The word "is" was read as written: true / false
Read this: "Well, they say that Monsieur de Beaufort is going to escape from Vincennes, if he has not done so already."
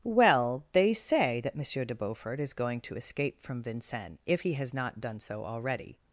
true